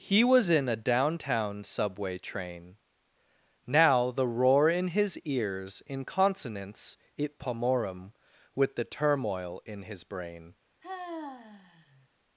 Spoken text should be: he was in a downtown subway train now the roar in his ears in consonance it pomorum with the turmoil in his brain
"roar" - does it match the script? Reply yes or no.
yes